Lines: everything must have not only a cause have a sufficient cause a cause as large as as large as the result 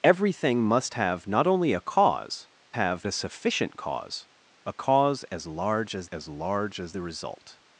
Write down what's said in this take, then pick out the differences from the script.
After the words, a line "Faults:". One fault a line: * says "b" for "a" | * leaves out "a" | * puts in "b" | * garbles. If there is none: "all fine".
everything must have not only a cause have a sufficient cause a cause as large as as large as the result
Faults:
all fine